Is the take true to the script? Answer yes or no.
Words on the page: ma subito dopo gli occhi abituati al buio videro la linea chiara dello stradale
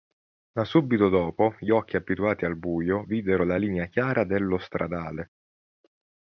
yes